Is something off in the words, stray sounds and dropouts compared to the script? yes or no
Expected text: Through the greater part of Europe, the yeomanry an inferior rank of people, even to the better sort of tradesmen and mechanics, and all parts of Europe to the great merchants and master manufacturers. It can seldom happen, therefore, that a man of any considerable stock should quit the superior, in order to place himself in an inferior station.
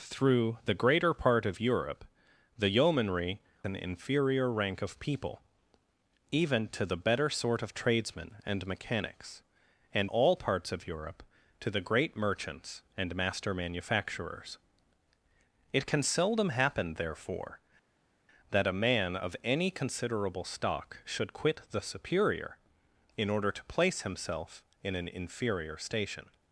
no